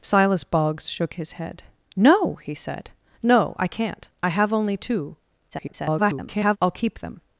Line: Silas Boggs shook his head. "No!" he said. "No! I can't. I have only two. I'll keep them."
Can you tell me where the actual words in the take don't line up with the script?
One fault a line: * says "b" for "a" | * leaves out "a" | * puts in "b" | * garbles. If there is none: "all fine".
* garbles